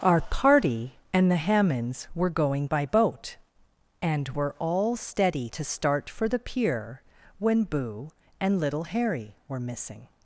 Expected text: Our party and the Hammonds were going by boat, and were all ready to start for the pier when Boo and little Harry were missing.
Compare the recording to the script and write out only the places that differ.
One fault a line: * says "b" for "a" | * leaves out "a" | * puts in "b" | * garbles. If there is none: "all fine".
* says "steady" for "ready"